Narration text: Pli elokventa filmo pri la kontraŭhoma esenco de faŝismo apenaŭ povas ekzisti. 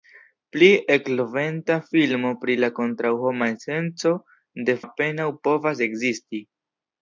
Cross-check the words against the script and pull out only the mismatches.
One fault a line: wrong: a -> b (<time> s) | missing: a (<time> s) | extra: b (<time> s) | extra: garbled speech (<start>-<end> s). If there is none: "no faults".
missing: faŝismo (4.8 s)